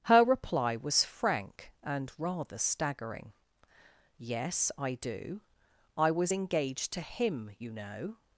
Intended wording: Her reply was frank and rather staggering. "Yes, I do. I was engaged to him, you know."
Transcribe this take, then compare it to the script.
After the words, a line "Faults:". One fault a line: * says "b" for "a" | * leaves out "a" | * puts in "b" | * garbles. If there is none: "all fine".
Her reply was frank and rather staggering. "Yes, I do. I was engaged to him, you know."
Faults:
all fine